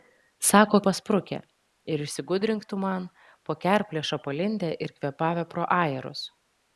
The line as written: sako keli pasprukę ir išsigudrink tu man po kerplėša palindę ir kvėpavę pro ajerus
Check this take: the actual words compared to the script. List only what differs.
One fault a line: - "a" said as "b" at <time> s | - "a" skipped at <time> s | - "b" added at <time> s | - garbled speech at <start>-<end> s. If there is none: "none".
- "keli" skipped at 0.8 s